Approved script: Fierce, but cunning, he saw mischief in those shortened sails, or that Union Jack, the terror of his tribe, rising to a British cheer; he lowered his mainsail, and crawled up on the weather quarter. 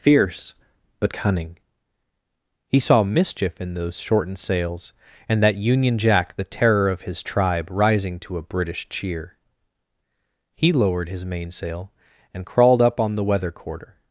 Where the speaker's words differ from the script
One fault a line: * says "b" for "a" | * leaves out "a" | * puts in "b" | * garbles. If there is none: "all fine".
* says "and" for "or"